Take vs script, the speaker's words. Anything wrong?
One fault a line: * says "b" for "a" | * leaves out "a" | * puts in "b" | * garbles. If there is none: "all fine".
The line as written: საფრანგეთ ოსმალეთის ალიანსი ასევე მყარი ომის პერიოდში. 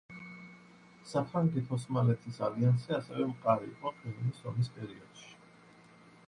* puts in "იყო ყირიმის"